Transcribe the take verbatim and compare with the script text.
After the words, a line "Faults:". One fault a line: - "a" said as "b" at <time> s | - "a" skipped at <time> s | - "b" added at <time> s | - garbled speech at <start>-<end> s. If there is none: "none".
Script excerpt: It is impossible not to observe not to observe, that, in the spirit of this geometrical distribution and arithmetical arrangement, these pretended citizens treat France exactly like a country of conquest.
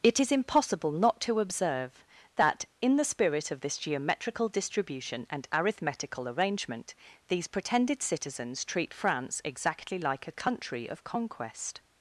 It is impossible not to observe, that, in the spirit of this geometrical distribution and arithmetical arrangement, these pretended citizens treat France exactly like a country of conquest.
Faults:
- "not to observe" skipped at 2.0 s